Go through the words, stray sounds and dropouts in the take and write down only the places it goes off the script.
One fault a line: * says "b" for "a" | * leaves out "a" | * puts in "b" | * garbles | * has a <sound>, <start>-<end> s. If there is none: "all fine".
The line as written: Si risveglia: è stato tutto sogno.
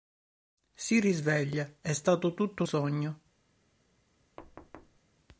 * has a thud, 4.4-5.0 s